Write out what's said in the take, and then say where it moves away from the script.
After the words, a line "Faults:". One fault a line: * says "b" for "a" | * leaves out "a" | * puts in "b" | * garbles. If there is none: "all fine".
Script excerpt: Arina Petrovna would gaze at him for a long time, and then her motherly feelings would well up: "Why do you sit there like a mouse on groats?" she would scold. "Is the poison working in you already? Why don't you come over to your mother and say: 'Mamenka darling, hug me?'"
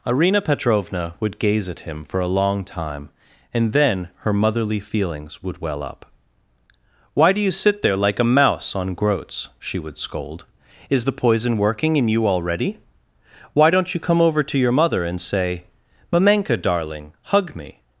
Arina Petrovna would gaze at him for a long time, and then her motherly feelings would well up: "Why do you sit there like a mouse on groats?" she would scold. "Is the poison working in you already? Why don't you come over to your mother and say: 'Mamenka darling, hug me?'"
Faults:
all fine